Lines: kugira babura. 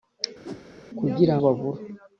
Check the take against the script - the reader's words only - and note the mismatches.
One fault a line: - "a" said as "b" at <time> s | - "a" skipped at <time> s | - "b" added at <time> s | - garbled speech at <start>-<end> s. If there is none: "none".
none